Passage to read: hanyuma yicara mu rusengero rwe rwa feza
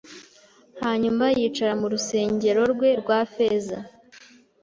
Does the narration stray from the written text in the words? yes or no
no